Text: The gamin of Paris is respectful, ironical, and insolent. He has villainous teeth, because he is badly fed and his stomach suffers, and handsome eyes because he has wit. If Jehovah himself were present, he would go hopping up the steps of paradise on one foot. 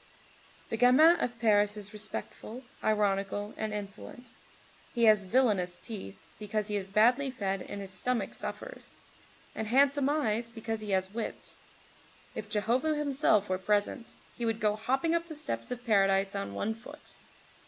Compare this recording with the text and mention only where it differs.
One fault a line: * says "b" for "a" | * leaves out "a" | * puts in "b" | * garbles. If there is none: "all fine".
all fine